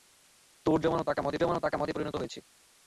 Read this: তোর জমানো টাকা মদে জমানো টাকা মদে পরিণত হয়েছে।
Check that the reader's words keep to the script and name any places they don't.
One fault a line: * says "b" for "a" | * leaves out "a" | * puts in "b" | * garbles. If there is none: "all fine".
all fine